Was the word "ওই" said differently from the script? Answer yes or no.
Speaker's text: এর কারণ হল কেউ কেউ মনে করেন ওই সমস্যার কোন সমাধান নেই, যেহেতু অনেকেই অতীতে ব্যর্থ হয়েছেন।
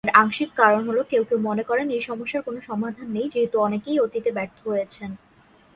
yes